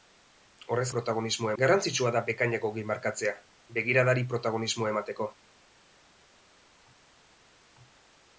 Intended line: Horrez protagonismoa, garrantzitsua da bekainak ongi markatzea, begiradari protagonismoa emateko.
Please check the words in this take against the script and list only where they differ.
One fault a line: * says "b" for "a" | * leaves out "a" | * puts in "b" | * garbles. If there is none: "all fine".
all fine